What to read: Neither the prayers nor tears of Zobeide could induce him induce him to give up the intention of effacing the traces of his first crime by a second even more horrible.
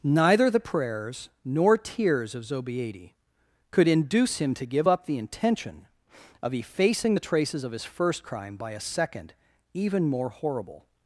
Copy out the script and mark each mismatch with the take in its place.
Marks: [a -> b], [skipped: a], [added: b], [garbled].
Neither the prayers nor tears of Zobeide could induce him [skipped: induce him] to give up the intention of effacing the traces of his first crime by a second even more horrible.